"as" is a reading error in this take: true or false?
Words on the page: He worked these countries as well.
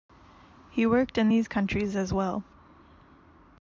false